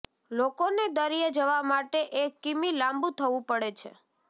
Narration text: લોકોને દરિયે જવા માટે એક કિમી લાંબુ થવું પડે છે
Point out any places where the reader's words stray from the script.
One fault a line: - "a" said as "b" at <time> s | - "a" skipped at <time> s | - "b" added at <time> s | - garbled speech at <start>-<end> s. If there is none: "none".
none